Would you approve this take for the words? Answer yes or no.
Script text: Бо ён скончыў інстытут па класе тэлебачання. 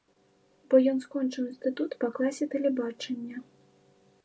yes